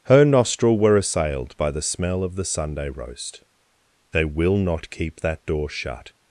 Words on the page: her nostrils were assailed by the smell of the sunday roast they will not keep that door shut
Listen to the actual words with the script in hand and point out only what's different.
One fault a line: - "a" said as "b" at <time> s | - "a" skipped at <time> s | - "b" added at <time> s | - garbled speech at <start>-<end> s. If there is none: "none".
- "nostrils" said as "nostril" at 0.2 s